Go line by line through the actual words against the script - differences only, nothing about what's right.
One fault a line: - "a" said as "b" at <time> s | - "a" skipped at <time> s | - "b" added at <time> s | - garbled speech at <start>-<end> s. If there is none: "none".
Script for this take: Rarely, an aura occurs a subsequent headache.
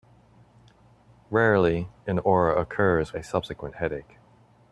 none